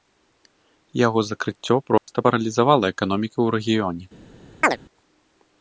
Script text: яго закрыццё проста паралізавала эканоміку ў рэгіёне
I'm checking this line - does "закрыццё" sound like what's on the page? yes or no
yes